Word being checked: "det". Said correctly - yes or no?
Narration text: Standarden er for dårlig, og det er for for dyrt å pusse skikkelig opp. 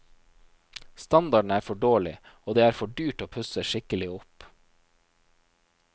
yes